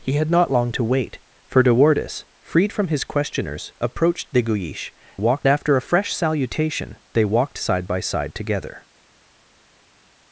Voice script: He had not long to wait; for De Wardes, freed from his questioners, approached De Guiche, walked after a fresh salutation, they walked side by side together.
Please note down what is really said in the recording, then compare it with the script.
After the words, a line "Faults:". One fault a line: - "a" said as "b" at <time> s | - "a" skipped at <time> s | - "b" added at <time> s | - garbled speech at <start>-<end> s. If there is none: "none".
He had not long to wait; for De Wardes, freed from his questioners, approached De Guiche, walked after a fresh salutation, they walked side by side together.
Faults:
none